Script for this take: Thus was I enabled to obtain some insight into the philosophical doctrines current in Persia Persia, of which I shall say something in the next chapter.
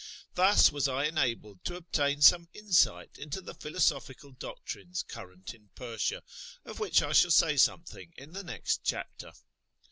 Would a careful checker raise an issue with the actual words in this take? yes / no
yes